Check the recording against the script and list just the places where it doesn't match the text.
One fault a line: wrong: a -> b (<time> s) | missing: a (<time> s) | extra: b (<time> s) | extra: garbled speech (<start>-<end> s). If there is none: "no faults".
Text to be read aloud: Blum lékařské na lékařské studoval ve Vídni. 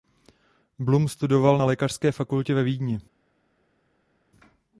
wrong: lékařské -> studoval (1.1 s)
wrong: studoval -> fakultě (2.1 s)